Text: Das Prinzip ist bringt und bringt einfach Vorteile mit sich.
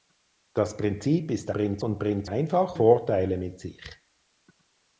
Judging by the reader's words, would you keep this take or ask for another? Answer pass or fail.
pass